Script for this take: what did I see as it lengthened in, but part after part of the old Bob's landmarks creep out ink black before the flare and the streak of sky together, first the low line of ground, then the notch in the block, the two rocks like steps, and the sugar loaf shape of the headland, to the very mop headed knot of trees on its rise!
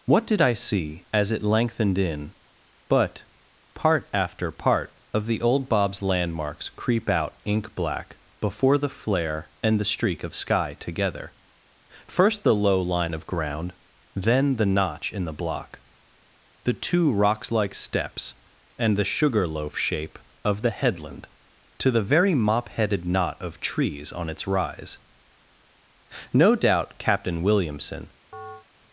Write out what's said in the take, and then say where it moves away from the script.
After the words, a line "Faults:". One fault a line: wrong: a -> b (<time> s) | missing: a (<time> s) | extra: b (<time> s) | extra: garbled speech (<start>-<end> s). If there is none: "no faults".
what did I see as it lengthened in, but part after part of the old Bob's landmarks creep out ink black before the flare and the streak of sky together, first the low line of ground, then the notch in the block, the two rocks like steps, and the sugar loaf shape of the headland, to the very mop headed knot of trees on its rise! No doubt Captain Williamson
Faults:
extra: No doubt Captain Williamson (26.3 s)